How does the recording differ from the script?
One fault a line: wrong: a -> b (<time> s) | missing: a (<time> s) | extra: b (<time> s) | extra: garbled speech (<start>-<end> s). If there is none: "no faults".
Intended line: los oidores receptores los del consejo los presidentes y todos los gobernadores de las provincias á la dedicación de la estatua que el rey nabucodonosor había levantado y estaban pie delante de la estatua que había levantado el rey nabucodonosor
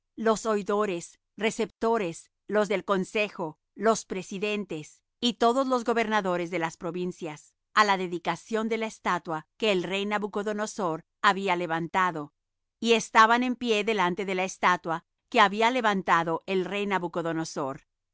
extra: en (13.4 s)